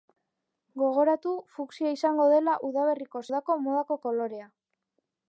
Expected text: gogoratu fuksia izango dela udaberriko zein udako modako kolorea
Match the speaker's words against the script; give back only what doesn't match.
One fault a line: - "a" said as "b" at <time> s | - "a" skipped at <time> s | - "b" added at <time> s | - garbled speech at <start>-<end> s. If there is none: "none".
- "zein" skipped at 3.2 s